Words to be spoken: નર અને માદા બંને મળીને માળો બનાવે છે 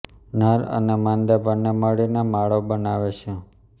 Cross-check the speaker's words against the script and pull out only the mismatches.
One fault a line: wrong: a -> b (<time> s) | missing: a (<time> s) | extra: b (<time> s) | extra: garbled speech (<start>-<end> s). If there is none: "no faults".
no faults